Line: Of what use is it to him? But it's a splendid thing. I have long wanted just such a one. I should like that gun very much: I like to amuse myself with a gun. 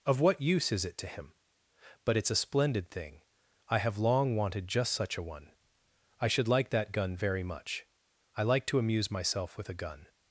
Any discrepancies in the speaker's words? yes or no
no